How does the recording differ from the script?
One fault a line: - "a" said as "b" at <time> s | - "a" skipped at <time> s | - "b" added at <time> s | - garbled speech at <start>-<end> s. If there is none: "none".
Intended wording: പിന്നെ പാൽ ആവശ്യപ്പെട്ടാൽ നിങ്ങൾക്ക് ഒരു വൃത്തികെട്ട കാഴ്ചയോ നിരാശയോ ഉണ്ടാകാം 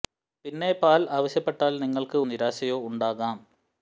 - "ഒരു വൃത്തികെട്ട കാഴ്ചയോ" skipped at 2.2 s